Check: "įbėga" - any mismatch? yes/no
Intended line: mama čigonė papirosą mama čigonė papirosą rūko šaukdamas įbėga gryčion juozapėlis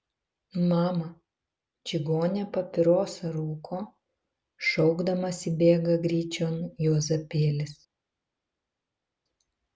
no